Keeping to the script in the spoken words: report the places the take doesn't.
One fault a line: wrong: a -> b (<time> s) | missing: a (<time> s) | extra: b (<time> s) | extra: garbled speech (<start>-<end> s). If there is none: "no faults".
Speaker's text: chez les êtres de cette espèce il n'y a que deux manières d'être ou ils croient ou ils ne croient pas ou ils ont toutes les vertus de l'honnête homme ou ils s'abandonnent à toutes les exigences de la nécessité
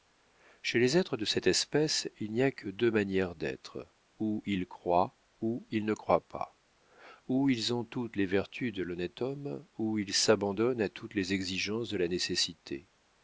no faults